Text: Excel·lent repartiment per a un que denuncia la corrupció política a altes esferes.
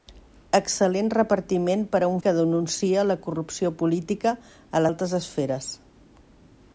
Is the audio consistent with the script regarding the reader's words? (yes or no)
yes